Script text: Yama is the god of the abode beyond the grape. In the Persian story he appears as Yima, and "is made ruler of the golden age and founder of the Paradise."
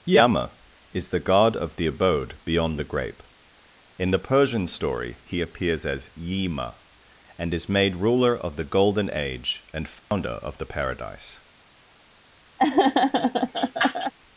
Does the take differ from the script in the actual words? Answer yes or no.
no